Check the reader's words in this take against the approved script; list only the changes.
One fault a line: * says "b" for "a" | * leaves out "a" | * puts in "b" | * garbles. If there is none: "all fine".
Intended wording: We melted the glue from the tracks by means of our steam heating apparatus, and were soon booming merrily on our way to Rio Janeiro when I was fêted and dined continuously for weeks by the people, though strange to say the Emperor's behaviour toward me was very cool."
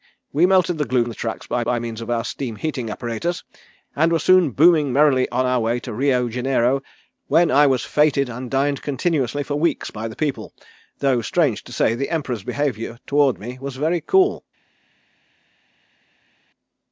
* leaves out "from"
* puts in "by"